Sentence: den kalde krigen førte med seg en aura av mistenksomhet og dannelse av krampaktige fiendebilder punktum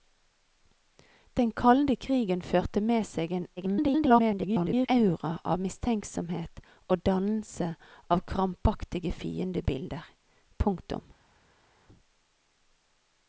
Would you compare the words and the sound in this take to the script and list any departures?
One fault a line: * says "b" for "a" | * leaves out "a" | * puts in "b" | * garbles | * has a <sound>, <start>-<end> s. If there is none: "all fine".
* garbles